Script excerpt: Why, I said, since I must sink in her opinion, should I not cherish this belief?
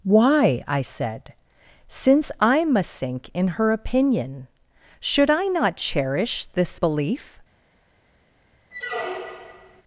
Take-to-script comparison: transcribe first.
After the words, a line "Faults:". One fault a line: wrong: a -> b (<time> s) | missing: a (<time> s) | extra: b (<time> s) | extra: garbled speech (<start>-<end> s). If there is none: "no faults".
Why, I said, since I must sink in her opinion, should I not cherish this belief?
Faults:
no faults